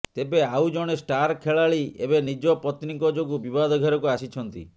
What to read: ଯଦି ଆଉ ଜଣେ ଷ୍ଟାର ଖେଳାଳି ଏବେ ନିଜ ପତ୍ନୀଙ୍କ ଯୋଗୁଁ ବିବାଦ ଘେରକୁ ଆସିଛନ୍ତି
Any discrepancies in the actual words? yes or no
yes